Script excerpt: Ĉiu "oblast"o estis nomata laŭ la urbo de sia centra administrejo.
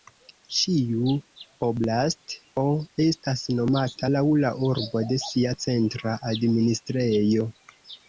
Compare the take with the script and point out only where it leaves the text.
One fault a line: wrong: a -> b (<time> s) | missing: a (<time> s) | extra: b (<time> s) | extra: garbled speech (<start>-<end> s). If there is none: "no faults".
wrong: estis -> estas (3.0 s)